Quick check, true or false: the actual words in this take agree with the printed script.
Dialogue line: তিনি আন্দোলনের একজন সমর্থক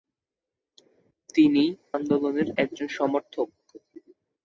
true